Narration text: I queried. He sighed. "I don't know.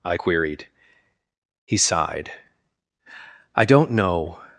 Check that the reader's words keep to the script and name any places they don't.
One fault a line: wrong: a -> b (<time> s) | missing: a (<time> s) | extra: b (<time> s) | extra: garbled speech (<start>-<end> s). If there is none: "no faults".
no faults